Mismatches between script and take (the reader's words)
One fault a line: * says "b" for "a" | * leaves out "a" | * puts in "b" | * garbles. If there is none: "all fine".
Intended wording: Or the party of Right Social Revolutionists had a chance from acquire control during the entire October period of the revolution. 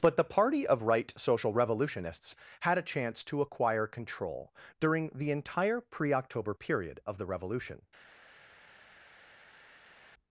* says "But" for "Or"
* says "to" for "from"
* puts in "pre"